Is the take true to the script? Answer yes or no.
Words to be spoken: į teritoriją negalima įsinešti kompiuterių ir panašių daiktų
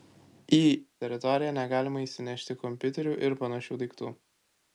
yes